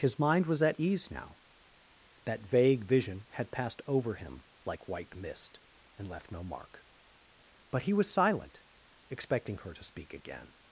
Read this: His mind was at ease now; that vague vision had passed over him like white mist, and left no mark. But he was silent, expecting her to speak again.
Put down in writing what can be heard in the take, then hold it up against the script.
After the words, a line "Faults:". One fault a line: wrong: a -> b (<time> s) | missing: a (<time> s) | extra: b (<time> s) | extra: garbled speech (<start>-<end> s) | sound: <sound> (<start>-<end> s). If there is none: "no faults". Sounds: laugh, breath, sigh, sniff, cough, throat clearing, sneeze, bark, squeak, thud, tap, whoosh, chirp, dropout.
His mind was at ease now; that vague vision had passed over him like white mist, and left no mark. But he was silent, expecting her to speak again.
Faults:
no faults